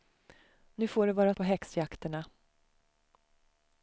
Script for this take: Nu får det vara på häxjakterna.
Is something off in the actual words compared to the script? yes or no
no